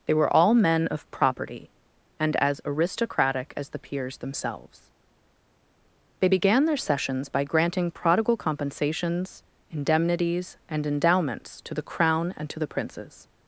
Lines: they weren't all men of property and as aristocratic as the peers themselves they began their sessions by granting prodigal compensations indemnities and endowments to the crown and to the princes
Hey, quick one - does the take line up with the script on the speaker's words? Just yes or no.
no